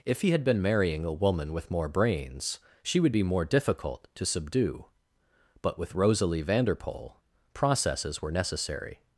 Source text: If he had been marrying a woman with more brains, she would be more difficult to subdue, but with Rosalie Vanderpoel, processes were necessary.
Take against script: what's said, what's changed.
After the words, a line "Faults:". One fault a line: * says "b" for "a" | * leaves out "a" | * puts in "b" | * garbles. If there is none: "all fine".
If he had been marrying a woman with more brains, she would be more difficult to subdue, but with Rosalie Vanderpoel, processes were necessary.
Faults:
all fine